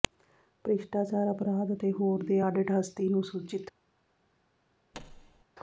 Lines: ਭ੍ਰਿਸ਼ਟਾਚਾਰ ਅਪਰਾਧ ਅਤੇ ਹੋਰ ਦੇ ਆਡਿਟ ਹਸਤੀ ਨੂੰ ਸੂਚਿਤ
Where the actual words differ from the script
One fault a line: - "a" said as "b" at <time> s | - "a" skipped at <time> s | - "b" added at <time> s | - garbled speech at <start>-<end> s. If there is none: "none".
none